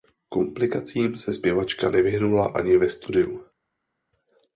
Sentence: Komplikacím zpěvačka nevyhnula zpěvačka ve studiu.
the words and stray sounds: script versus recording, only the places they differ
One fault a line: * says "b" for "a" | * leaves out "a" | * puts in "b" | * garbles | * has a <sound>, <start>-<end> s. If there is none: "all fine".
* puts in "se"
* says "ani" for "zpěvačka"